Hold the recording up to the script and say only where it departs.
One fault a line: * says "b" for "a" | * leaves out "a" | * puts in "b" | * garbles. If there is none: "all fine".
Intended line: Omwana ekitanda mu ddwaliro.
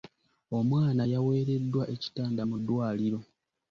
* puts in "yaweereddwa"